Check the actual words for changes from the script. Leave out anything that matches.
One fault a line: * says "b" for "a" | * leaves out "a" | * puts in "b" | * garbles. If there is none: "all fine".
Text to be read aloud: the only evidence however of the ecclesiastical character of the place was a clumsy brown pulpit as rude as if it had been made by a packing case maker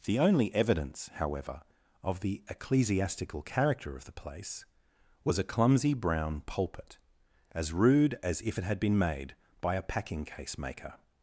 all fine